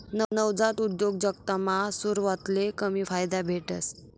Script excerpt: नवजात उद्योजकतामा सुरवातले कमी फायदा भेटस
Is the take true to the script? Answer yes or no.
yes